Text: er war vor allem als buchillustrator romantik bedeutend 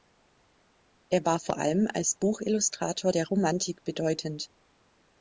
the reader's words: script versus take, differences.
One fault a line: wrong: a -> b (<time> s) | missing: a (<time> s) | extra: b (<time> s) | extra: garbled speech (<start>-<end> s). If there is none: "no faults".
extra: der (3.1 s)